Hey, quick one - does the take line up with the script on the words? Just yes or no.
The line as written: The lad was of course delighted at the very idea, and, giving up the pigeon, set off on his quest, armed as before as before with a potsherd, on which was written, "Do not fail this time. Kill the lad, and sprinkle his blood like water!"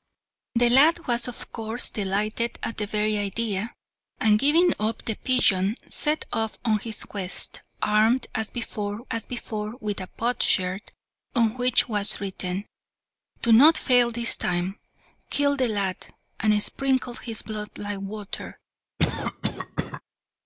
yes